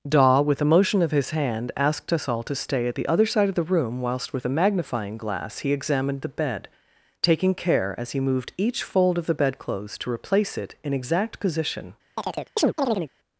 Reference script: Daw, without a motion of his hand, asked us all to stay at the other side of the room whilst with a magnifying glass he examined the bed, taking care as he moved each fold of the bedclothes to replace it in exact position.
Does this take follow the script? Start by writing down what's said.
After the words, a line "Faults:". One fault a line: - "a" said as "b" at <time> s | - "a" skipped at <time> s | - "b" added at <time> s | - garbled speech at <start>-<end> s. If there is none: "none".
Daw, with a motion of his hand, asked us all to stay at the other side of the room whilst with a magnifying glass he examined the bed, taking care as he moved each fold of the bedclothes to replace it in exact position.
Faults:
- "without" said as "with" at 0.4 s